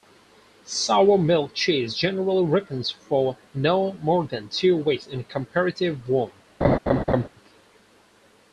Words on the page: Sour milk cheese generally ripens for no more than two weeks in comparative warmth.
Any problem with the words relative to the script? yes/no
no